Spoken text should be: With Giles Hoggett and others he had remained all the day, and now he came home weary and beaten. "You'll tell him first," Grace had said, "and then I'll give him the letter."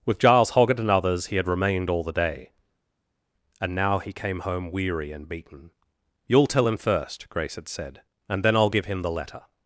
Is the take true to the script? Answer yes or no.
yes